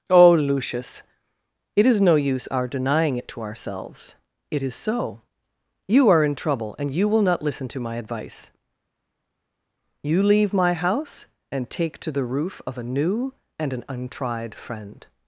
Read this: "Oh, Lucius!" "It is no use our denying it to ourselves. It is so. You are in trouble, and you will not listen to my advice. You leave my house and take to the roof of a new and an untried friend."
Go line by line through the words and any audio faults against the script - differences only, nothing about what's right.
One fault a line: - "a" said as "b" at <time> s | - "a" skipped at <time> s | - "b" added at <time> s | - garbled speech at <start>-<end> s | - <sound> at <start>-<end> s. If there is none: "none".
none